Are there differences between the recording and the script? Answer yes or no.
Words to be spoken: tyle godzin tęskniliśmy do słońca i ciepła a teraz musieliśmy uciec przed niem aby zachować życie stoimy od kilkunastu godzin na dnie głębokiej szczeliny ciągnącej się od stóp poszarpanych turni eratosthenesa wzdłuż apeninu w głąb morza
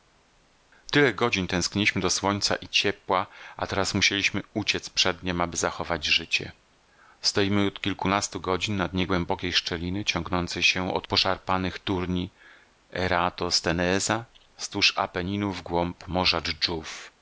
yes